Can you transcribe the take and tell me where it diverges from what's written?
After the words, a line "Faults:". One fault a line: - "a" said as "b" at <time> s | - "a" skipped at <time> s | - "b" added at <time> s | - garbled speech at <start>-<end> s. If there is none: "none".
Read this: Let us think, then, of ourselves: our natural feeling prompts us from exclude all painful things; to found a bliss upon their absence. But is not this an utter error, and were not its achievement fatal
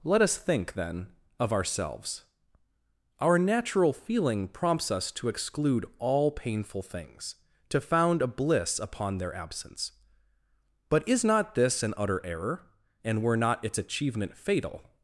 Let us think, then, of ourselves: our natural feeling prompts us to exclude all painful things; to found a bliss upon their absence. But is not this an utter error, and were not its achievement fatal
Faults:
- "from" said as "to" at 5.1 s